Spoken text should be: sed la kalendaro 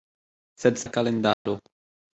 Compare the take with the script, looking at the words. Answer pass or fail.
pass